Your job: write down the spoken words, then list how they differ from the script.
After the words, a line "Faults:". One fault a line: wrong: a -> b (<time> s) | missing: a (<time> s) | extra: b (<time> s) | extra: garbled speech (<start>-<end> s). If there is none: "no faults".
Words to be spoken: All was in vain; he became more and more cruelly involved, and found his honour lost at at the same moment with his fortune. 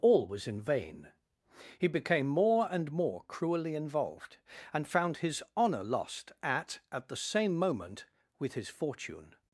All was in vain; he became more and more cruelly involved, and found his honour lost at at the same moment with his fortune.
Faults:
no faults